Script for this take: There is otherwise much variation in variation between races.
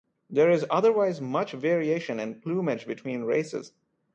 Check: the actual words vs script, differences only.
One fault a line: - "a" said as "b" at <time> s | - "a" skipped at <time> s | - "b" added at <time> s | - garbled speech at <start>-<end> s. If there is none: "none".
- "variation" said as "plumage" at 2.4 s